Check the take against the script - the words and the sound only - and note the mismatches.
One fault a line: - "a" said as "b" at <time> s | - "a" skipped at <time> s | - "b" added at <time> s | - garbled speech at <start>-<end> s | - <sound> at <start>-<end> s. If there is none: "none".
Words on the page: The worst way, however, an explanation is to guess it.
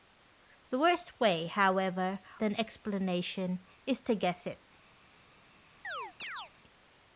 - chirp at 5.8-6.5 s